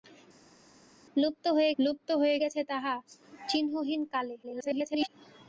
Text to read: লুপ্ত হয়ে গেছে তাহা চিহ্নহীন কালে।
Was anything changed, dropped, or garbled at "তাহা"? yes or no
no